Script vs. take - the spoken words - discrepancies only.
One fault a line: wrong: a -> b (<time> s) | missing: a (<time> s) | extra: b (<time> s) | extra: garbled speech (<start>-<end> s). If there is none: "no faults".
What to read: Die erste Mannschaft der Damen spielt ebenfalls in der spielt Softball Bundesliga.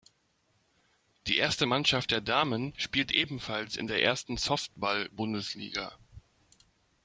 wrong: spielt -> ersten (4.0 s)